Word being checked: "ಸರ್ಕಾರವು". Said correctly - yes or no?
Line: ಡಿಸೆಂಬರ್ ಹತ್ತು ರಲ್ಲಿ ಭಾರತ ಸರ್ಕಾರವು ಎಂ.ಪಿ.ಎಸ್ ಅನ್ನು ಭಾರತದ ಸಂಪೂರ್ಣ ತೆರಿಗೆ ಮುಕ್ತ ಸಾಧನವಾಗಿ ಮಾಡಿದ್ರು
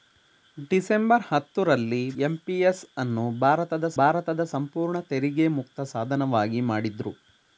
no